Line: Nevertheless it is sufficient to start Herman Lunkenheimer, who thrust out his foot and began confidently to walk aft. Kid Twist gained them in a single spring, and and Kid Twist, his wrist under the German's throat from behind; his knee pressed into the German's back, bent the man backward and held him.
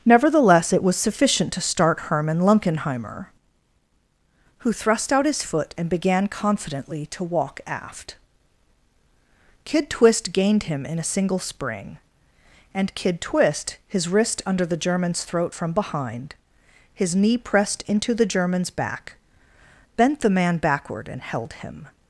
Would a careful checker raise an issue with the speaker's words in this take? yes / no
yes